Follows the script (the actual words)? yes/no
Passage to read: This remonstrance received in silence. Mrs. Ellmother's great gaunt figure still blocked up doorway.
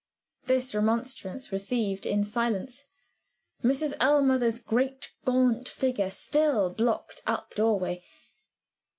yes